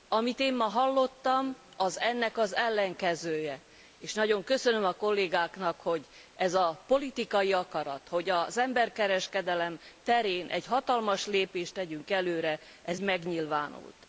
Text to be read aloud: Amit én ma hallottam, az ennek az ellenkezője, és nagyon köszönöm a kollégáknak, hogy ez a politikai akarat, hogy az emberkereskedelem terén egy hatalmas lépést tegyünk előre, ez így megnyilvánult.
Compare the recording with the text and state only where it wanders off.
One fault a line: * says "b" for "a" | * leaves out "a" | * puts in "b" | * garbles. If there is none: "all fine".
* leaves out "így"